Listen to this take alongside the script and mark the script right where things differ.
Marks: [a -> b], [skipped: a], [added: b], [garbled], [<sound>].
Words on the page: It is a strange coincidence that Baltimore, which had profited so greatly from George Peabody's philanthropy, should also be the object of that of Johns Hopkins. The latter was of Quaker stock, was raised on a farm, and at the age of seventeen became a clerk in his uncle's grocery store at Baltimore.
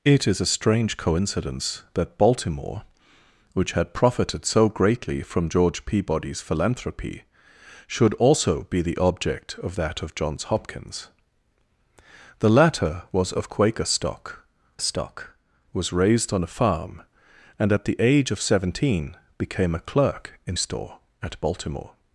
It is a strange coincidence that Baltimore, which had profited so greatly from George Peabody's philanthropy, should also be the object of that of Johns Hopkins. The latter was of Quaker stock, [added: stock] was raised on a farm, and at the age of seventeen became a clerk in [skipped: his uncle's grocery] store at Baltimore.